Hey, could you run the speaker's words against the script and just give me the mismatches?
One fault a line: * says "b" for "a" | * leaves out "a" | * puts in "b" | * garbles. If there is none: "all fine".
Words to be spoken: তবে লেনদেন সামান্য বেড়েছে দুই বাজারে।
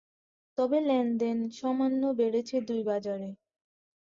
all fine